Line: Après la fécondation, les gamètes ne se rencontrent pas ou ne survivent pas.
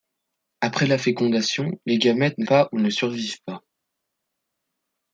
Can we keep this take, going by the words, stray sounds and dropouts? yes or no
no